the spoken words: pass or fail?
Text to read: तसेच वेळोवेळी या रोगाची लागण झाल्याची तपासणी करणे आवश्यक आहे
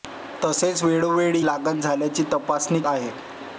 fail